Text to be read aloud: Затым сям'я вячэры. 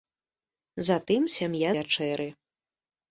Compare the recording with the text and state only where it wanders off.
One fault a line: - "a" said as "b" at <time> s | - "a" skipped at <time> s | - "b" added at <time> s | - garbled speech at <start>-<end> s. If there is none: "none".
none